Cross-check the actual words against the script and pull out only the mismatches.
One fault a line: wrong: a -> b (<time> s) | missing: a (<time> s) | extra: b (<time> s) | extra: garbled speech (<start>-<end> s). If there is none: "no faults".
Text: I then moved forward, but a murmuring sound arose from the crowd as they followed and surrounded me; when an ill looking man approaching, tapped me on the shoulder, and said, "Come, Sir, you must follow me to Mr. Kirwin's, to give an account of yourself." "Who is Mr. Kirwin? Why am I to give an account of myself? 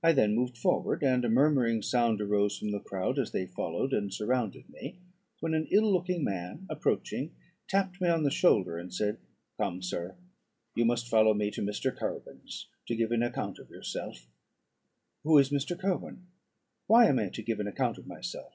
wrong: but -> and (1.0 s)